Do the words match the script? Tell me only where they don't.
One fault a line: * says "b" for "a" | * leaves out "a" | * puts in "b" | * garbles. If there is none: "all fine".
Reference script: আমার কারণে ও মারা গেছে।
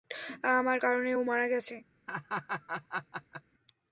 all fine